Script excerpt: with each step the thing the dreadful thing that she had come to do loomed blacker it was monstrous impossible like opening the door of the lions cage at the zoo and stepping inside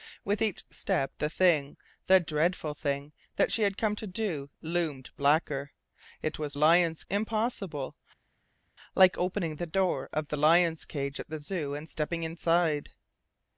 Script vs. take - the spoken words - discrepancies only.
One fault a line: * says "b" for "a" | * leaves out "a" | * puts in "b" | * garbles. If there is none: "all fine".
* says "lions" for "monstrous"